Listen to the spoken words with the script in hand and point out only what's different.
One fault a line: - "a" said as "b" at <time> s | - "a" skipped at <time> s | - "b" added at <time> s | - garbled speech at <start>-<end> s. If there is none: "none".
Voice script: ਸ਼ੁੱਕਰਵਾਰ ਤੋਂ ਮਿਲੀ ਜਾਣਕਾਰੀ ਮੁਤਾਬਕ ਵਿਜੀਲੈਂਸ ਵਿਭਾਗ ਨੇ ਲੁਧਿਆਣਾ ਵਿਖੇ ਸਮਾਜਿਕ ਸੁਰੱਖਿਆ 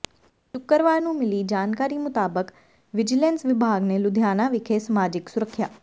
- "ਤੋਂ" said as "ਨੂੰ" at 1.0 s